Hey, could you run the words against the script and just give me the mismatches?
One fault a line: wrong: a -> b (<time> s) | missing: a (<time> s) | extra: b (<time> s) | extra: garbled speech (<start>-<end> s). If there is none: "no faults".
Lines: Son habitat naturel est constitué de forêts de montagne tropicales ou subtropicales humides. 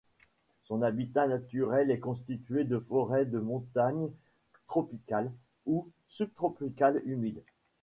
no faults